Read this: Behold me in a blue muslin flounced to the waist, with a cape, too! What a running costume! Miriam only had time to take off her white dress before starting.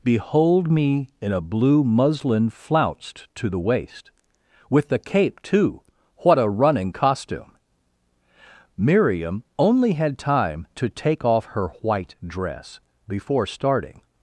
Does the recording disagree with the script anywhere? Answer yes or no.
yes